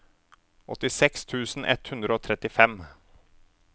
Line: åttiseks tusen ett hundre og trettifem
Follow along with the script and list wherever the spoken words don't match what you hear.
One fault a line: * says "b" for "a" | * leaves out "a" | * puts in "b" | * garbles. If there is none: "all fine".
all fine